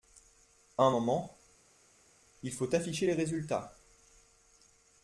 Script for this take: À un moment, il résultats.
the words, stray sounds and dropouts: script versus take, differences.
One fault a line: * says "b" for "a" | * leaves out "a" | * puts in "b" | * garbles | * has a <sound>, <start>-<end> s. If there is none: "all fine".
* puts in "faut afficher les"